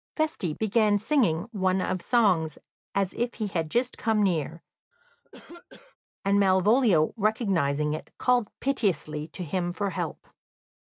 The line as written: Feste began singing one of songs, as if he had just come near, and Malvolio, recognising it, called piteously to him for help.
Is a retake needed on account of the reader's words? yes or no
no